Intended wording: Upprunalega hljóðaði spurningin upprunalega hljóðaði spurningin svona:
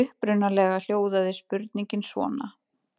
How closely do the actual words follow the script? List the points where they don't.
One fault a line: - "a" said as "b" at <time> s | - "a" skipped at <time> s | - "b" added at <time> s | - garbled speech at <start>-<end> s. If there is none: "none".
- "upprunalega hljóðaði spurningin" skipped at 2.1 s